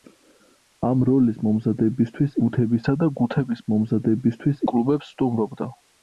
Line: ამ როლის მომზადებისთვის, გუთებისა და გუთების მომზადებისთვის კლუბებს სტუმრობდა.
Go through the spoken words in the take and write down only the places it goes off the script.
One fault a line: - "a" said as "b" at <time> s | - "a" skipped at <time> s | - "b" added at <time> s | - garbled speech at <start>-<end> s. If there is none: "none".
none